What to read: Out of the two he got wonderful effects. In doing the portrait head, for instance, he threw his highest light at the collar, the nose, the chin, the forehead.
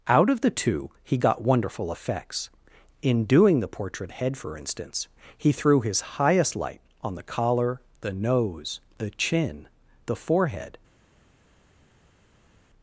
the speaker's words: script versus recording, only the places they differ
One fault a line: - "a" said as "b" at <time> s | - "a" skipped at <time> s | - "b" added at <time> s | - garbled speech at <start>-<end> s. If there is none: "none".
- "at" said as "on" at 7.0 s